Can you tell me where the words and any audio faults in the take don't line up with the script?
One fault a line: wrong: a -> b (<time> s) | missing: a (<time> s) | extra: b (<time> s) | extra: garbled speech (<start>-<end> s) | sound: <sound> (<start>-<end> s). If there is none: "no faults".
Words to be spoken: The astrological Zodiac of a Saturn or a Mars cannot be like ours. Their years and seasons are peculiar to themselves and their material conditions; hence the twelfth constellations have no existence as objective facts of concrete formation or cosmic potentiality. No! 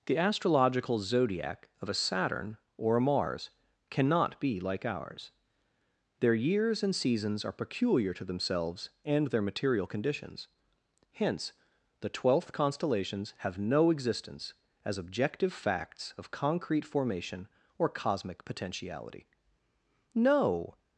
no faults